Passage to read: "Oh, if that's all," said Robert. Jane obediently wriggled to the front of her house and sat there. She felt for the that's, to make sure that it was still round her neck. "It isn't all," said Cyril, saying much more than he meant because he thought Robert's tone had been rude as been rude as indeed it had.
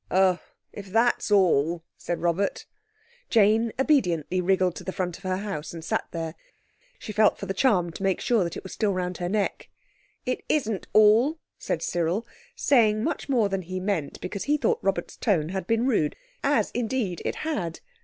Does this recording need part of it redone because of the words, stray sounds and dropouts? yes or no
yes